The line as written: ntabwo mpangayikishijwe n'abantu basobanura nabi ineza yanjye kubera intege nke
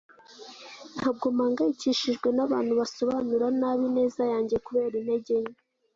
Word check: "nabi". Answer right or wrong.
right